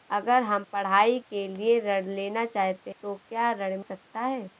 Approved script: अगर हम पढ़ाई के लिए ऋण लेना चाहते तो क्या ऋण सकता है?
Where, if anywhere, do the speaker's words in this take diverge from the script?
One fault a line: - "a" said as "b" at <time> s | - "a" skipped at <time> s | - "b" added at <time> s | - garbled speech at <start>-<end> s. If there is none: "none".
none